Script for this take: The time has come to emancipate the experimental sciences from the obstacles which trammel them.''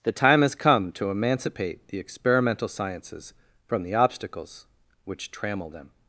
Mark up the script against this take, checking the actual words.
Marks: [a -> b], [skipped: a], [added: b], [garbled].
The time has come to emancipate the experimental sciences from the obstacles which trammel them.''